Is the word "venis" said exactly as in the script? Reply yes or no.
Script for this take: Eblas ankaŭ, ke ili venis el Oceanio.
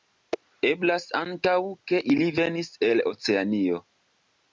yes